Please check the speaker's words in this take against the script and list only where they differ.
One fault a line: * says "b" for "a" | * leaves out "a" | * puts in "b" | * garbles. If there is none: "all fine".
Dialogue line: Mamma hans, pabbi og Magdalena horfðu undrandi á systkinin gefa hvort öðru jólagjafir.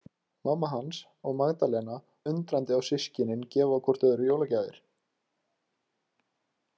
* leaves out "pabbi"
* leaves out "horfðu"